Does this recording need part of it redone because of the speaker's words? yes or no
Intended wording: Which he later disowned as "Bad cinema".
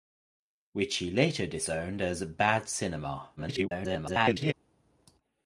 yes